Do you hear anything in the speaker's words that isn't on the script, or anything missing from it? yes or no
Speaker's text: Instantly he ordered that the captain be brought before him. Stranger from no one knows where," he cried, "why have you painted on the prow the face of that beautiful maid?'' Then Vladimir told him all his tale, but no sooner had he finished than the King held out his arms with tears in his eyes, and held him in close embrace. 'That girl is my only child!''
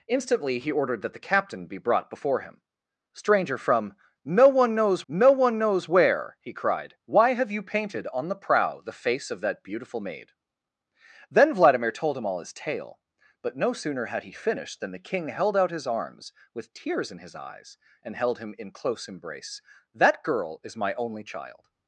yes